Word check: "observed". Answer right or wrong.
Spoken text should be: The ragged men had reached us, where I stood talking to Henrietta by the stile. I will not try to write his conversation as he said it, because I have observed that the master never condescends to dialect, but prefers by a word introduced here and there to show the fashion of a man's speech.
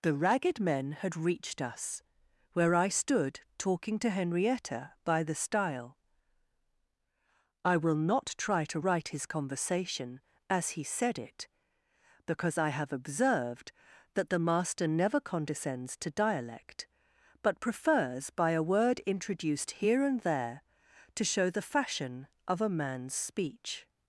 right